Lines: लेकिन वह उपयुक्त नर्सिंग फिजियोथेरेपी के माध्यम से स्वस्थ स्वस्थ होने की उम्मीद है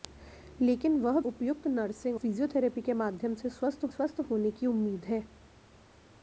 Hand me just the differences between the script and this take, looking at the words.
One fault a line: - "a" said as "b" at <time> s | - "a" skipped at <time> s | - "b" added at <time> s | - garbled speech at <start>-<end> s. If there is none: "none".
none